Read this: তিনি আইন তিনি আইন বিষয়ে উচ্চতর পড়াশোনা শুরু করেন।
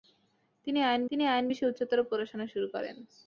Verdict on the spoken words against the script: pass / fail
pass